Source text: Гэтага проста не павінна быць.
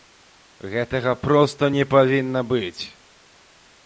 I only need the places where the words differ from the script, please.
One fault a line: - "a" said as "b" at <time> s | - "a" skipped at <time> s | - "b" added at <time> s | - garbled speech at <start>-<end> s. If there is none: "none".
none